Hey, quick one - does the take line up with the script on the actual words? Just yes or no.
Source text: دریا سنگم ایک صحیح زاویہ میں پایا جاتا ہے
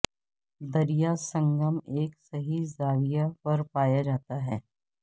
no